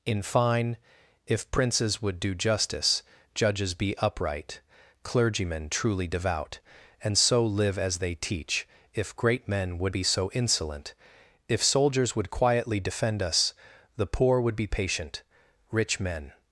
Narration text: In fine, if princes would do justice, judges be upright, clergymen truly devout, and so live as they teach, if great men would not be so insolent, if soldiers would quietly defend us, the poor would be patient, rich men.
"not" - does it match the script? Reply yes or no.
no